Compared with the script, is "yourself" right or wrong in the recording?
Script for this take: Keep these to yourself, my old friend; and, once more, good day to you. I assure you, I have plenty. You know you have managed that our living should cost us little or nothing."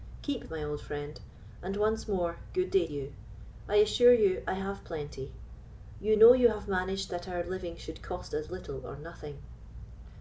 wrong